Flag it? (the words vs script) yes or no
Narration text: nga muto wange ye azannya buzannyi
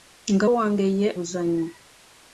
yes